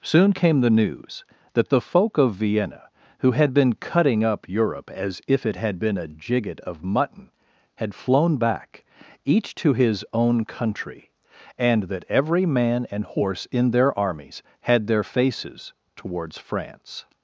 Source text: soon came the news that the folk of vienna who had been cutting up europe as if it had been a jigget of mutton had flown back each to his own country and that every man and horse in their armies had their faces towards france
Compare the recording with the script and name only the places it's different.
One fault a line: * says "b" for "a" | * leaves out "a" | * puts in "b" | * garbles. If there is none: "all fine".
all fine